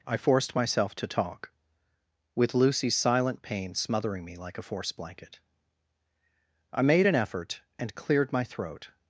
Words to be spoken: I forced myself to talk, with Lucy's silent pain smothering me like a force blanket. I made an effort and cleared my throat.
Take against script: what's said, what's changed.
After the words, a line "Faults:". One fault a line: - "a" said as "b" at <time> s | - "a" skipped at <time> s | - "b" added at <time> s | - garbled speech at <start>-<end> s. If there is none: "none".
I forced myself to talk, with Lucy's silent pain smothering me like a force blanket. I made an effort and cleared my throat.
Faults:
none